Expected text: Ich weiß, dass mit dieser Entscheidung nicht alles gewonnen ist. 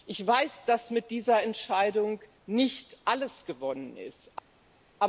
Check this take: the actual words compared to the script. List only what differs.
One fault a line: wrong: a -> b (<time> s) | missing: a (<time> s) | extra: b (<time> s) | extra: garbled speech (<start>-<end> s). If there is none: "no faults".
no faults